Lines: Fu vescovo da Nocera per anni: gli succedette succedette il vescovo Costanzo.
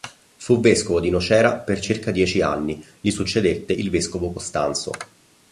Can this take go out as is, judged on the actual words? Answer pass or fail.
fail